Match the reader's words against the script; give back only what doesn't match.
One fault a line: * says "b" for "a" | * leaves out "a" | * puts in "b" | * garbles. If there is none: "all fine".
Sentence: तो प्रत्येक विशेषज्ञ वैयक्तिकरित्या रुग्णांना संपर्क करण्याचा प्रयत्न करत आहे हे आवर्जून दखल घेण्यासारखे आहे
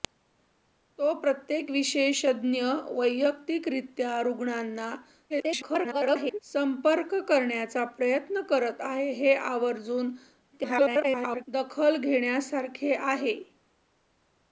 * garbles
* garbles